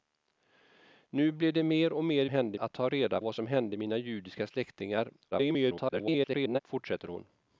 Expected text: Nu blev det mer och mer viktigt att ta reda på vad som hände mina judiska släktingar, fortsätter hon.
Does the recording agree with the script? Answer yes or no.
no